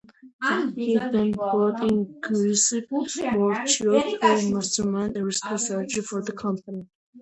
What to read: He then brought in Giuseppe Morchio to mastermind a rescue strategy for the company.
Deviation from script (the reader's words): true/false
false